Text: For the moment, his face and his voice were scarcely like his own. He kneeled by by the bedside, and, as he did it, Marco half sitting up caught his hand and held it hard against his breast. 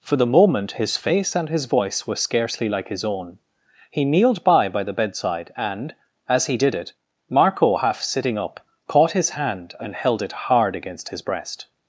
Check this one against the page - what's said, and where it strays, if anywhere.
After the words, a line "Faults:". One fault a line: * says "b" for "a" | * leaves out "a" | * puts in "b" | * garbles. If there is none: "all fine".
For the moment, his face and his voice were scarcely like his own. He kneeled by by the bedside, and, as he did it, Marco half sitting up caught his hand and held it hard against his breast.
Faults:
all fine